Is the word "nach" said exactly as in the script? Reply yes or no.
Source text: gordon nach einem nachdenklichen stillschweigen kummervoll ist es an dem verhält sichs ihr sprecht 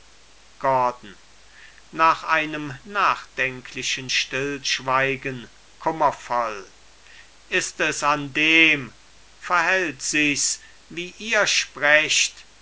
yes